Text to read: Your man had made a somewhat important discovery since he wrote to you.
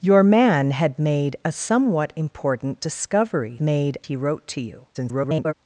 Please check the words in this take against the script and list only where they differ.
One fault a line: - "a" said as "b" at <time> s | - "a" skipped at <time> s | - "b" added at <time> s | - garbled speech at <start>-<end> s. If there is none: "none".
- "since" said as "made" at 3.6 s
- garbled speech at 4.9-5.5 s